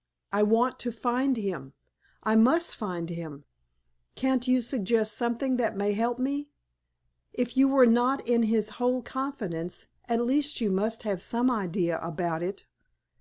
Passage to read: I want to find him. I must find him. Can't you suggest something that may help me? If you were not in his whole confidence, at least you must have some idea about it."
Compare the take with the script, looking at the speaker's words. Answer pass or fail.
pass